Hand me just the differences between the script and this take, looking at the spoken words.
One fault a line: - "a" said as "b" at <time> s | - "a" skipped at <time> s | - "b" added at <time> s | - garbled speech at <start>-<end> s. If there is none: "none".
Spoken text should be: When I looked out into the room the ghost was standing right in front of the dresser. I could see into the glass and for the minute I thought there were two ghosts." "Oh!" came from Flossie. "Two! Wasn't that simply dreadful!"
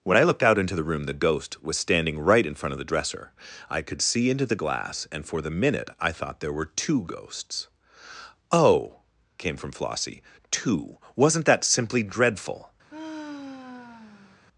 none